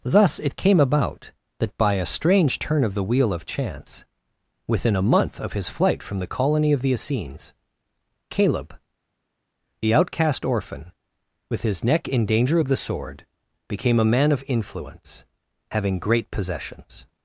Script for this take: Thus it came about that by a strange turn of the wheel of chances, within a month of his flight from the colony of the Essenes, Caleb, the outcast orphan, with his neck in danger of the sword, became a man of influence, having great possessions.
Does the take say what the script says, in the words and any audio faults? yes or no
no